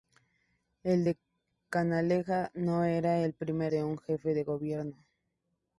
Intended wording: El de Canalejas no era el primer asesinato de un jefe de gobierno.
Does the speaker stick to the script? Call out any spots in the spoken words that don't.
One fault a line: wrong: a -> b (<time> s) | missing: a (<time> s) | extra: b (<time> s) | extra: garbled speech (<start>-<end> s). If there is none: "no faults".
missing: asesinato (3.7 s)